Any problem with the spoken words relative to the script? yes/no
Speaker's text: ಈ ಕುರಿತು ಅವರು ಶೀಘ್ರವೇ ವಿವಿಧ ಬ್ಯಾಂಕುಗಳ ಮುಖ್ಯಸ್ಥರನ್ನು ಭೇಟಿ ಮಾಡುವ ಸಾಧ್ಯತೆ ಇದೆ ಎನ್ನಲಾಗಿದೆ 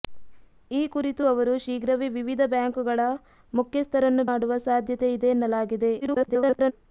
yes